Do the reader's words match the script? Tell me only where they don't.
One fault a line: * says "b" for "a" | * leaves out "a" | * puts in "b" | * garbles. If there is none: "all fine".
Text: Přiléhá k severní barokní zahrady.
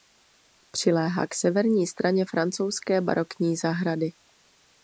* puts in "straně francouzské"